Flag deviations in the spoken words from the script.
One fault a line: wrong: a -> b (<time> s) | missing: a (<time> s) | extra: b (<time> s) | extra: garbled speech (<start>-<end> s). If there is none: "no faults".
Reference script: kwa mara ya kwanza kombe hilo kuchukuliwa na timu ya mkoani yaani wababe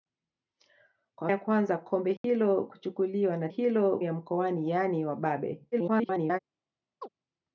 missing: mara (1.3 s)
wrong: timu -> hilo (3.5 s)
extra: garbled speech (5.7-6.4 s)